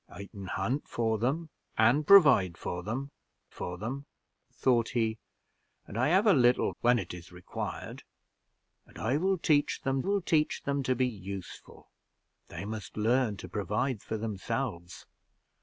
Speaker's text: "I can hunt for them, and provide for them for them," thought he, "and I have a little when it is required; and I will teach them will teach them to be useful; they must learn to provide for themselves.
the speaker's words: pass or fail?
pass